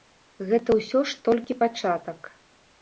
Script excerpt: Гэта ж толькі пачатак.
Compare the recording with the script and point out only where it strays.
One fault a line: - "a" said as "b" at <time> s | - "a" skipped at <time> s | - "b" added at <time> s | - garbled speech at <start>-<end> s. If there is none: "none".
- "ўсё" added at 0.8 s